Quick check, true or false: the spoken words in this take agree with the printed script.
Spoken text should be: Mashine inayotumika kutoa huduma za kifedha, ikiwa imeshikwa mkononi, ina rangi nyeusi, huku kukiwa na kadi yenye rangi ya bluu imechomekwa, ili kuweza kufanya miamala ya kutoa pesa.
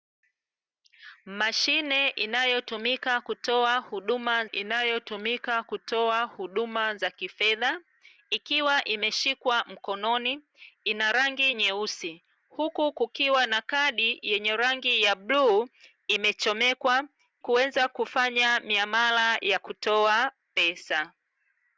false